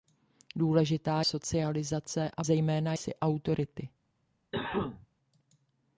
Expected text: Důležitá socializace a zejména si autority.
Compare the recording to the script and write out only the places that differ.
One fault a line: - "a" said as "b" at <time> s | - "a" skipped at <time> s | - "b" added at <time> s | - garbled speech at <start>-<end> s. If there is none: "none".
none